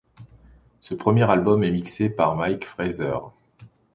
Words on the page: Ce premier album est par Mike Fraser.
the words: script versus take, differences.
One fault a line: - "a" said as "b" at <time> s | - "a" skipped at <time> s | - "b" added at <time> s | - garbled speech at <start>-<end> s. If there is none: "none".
- "mixé" added at 1.7 s